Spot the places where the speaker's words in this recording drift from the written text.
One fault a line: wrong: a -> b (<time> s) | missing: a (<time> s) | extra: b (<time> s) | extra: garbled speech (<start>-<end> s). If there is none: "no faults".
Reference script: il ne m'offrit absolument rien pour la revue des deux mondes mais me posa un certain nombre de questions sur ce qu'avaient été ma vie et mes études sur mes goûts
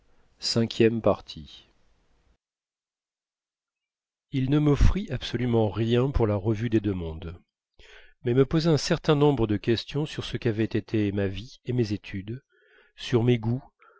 no faults